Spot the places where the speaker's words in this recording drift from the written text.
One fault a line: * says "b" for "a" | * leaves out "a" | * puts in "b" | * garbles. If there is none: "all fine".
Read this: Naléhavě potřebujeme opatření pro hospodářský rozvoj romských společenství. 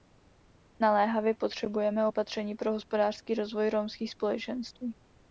all fine